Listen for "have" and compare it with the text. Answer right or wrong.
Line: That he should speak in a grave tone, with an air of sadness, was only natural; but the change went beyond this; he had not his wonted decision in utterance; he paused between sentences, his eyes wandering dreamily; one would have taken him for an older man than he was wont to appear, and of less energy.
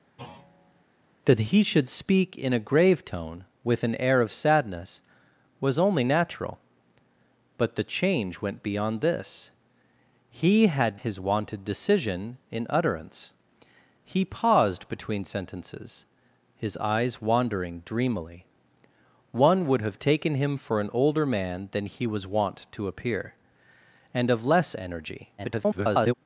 right